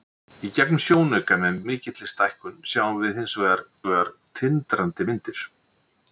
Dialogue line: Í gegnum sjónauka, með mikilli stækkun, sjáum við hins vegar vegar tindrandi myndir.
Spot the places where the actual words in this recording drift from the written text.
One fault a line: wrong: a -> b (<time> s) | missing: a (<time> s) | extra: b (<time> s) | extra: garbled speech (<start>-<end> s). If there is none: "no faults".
no faults